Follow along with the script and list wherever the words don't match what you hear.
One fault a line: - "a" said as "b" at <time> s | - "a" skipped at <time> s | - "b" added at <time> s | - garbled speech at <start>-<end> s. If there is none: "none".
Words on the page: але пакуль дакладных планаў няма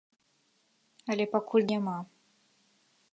- "дакладных планаў" skipped at 1.7 s